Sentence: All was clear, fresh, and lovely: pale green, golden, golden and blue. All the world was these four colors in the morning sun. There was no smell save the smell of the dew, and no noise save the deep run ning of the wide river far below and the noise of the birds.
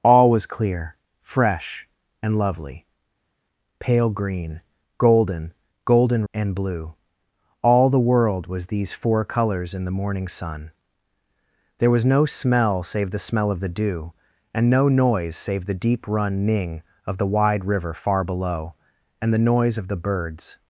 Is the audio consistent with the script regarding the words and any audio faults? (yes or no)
yes